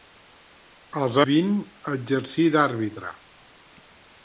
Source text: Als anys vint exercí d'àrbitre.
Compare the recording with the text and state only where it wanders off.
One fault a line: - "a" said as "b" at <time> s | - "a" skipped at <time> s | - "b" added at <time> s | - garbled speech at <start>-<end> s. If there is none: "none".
- "anys" skipped at 1.2 s